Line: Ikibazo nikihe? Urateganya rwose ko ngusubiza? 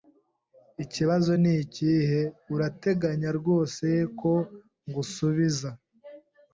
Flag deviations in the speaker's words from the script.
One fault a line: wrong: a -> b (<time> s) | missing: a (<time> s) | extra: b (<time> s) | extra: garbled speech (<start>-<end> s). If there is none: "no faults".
no faults